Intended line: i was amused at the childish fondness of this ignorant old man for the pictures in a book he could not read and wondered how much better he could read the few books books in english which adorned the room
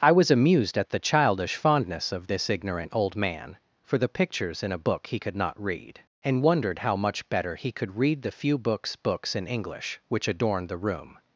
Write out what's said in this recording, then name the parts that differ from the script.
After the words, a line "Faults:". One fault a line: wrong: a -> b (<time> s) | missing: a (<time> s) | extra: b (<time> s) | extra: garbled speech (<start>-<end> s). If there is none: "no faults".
i was amused at the childish fondness of this ignorant old man for the pictures in a book he could not read and wondered how much better he could read the few books books in english which adorned the room
Faults:
no faults